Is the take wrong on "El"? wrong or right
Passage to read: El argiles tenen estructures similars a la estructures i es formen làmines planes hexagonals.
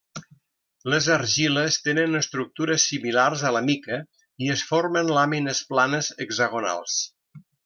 wrong